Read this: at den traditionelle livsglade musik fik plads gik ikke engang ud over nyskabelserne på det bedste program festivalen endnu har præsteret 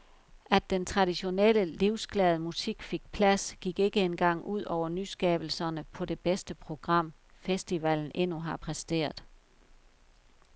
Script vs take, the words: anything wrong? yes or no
no